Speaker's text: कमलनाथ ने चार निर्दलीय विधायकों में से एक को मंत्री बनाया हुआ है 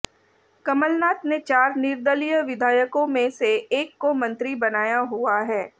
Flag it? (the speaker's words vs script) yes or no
no